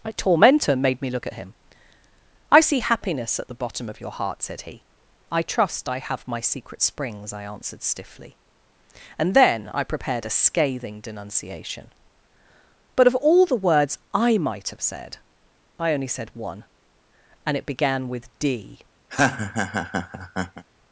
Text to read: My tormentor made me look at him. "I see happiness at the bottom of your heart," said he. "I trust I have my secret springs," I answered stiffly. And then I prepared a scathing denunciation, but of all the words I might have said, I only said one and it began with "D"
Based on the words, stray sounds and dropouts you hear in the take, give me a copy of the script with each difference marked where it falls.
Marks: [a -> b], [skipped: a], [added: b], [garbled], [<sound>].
My tormentor made me look at him. "I see happiness at the bottom of your heart," said he. "I trust I have my secret springs," I answered stiffly. And then I prepared a scathing denunciation, but of all the words I might have said, I only said one and it began with "D" [laugh]